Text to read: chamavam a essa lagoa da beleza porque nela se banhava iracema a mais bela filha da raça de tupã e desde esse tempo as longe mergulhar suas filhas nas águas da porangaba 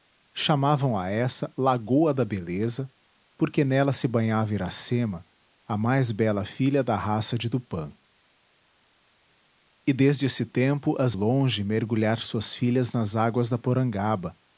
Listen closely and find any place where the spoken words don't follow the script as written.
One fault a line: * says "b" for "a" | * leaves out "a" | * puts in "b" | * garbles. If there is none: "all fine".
all fine